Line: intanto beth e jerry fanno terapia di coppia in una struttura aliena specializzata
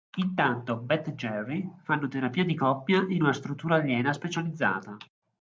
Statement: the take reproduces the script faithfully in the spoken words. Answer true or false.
true